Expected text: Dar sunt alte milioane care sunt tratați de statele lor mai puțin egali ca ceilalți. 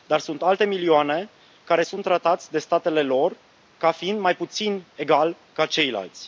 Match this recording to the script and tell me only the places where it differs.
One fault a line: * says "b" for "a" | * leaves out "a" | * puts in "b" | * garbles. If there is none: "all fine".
* puts in "ca fiind"